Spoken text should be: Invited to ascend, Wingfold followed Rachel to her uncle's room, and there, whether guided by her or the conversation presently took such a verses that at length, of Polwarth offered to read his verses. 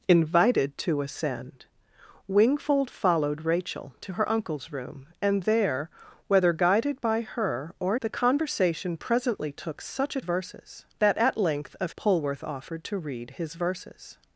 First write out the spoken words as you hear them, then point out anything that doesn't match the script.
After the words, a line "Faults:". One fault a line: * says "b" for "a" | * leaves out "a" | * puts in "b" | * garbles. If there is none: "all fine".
Invited to ascend, Wingfold followed Rachel to her uncle's room, and there, whether guided by her or the conversation presently took such a verses that at length, of Polwarth offered to read his verses.
Faults:
all fine